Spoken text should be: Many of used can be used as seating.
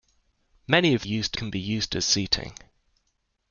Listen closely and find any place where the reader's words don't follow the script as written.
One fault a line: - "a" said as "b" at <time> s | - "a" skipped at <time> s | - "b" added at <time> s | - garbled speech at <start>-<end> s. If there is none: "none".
none